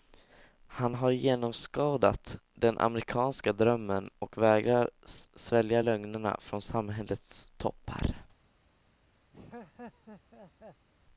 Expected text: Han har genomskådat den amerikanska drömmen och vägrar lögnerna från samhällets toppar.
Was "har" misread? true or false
false